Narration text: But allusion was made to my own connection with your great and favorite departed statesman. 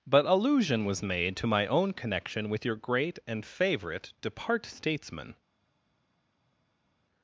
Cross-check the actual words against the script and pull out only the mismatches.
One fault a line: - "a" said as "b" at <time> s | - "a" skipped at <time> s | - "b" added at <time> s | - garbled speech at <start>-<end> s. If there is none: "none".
- "departed" said as "depart" at 4.2 s